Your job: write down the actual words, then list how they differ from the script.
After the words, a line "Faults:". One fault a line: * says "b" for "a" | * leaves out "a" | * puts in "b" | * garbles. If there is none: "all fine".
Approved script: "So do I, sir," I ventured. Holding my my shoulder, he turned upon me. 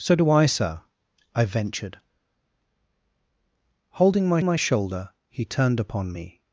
"So do I, sir," I ventured. Holding my my shoulder, he turned upon me.
Faults:
all fine